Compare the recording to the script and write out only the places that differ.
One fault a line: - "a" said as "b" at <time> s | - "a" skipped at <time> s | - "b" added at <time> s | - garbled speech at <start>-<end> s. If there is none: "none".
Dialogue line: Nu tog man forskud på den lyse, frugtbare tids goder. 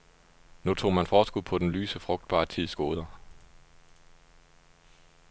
none